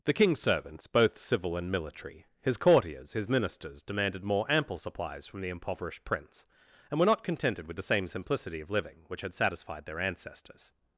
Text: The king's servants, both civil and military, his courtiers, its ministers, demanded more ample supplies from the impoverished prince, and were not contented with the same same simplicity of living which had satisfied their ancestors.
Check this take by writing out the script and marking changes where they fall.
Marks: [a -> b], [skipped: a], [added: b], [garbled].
The king's servants, both civil and military, his courtiers, [its -> his] ministers, demanded more ample supplies from the impoverished prince, and were not contented with the same [skipped: same] simplicity of living which had satisfied their ancestors.